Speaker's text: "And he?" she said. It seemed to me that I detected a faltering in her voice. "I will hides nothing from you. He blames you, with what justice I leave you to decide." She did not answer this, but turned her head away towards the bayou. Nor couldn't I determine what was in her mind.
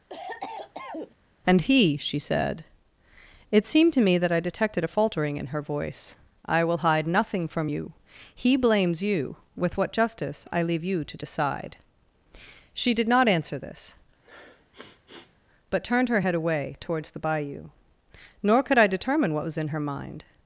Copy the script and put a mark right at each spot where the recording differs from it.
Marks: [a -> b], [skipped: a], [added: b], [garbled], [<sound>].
[cough] "And he?" she said. It seemed to me that I detected a faltering in her voice. "I will [hides -> hide] nothing from you. He blames you, with what justice I leave you to decide." She did not answer this, [sniff] but turned her head away towards the bayou. Nor [couldn't -> could] I determine what was in her mind.